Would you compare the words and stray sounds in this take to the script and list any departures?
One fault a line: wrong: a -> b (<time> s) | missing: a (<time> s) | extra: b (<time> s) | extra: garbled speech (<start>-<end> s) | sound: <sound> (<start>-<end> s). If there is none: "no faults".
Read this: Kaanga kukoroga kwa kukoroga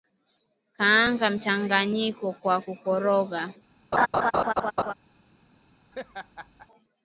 wrong: kukoroga -> mchanganyiko (1.3 s)
sound: laugh (3.9-4.9 s)
sound: laugh (5.9-6.7 s)